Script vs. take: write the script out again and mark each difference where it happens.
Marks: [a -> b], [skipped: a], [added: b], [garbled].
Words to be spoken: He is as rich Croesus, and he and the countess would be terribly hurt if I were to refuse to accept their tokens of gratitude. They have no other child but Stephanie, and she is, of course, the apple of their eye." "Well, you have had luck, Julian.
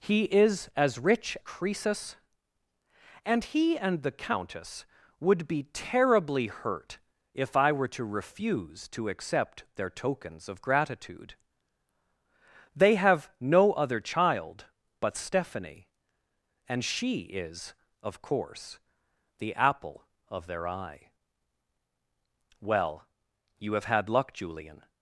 He is as rich Croesus, and he and the countess would be terribly hurt if I were to refuse to accept their tokens of gratitude. They have no other child but Stephanie, and she is, of course, the apple of their eye." "Well, you have had luck, Julian.